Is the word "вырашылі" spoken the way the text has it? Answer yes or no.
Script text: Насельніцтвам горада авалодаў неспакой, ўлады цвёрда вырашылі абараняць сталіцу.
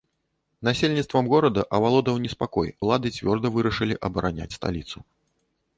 yes